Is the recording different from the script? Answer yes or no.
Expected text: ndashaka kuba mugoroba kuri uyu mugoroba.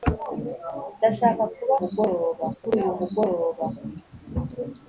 no